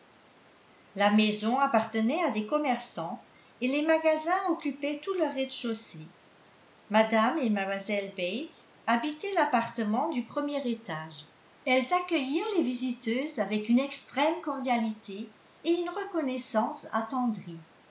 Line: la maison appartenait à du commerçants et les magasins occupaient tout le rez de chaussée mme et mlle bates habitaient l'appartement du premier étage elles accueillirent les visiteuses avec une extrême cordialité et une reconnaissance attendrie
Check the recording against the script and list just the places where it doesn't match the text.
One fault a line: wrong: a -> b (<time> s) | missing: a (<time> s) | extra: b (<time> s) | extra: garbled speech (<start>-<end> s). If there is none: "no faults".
wrong: du -> des (2.3 s)